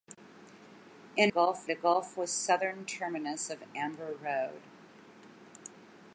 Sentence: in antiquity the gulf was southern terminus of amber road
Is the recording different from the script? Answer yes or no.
yes